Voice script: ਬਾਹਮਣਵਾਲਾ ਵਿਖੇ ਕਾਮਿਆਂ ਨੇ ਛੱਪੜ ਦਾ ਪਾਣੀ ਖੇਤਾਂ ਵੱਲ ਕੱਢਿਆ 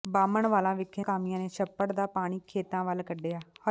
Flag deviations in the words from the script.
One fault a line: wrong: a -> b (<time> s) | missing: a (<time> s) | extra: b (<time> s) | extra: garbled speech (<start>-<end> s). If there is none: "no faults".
no faults